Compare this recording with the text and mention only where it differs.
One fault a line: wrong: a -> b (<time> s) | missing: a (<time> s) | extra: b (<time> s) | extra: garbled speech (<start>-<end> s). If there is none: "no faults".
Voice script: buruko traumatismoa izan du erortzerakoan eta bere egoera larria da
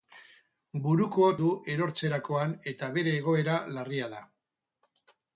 missing: traumatismoa izan (1.3 s)